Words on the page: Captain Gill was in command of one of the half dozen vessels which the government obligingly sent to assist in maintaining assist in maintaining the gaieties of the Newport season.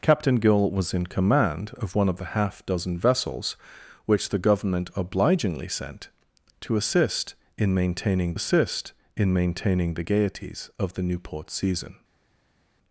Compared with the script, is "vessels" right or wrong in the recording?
right